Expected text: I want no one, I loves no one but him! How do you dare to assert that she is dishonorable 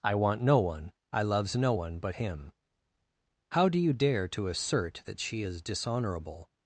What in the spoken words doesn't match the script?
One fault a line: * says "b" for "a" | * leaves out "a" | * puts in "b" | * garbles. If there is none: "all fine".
all fine